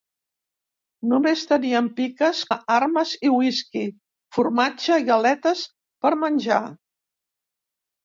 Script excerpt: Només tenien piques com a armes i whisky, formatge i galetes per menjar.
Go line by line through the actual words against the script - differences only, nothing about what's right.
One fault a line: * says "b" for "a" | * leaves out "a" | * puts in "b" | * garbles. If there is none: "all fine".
* leaves out "com"